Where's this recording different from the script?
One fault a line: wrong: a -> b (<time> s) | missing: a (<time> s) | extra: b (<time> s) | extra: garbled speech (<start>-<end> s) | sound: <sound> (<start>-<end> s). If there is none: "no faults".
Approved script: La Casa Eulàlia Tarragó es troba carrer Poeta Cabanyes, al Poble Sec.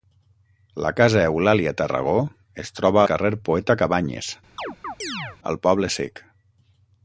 sound: chirp (4.6-5.4 s)